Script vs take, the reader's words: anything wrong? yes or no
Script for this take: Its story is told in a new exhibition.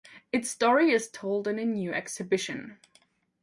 no